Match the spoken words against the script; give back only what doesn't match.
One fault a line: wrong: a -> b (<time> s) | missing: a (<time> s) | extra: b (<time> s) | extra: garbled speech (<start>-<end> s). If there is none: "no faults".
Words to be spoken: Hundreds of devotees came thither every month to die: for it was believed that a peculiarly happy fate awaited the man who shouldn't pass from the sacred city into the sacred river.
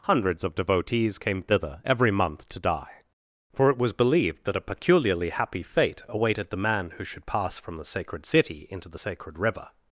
wrong: shouldn't -> should (7.0 s)